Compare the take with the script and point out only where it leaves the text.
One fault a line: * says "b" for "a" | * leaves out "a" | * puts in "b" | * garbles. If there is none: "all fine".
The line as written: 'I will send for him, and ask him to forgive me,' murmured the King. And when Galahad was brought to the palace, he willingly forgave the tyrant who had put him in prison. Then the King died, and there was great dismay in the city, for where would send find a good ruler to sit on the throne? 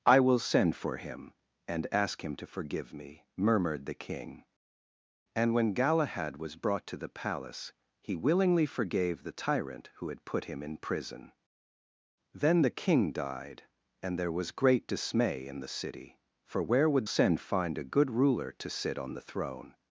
all fine